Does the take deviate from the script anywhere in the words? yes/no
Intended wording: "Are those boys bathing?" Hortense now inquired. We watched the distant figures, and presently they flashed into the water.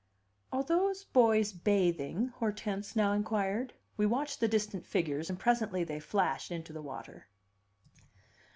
no